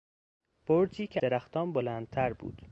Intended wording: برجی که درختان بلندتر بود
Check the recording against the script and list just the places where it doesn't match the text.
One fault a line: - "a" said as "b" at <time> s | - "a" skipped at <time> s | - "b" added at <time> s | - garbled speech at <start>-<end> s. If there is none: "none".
none